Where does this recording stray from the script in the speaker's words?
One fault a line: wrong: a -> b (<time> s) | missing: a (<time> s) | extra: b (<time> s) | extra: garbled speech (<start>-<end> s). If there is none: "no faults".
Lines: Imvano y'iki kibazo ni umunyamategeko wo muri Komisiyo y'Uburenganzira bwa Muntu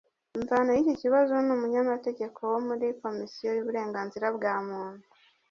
no faults